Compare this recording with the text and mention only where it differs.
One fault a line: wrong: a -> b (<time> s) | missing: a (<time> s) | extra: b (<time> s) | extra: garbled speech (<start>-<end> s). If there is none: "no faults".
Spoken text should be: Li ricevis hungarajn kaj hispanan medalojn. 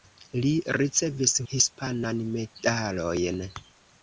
missing: hungarajn kaj (1.3 s)